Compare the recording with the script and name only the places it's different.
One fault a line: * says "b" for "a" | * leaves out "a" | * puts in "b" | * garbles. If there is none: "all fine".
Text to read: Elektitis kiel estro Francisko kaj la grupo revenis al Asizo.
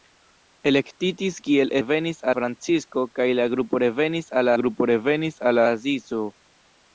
* says "revenis" for "estro"
* puts in "grupo revenis al"